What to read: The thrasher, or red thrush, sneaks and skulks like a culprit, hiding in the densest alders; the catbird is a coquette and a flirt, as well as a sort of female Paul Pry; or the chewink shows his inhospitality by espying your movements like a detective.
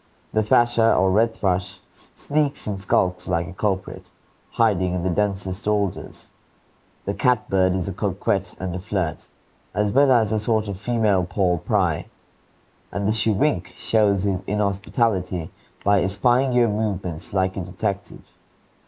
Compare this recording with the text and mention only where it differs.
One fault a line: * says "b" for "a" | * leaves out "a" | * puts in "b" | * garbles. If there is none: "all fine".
* says "and" for "or"